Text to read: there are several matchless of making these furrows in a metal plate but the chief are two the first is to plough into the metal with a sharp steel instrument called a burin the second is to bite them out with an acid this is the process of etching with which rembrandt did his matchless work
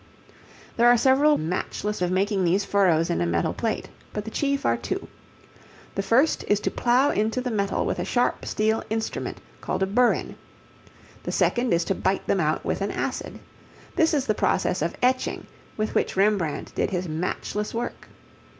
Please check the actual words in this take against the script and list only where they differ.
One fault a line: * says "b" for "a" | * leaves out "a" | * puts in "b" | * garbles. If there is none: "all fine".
all fine